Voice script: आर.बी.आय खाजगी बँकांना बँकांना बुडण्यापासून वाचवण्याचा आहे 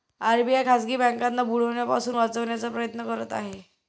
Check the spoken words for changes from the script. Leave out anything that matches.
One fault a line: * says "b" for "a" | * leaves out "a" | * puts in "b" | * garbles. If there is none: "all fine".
* leaves out "बँकांना"
* puts in "प्रयत्न करत"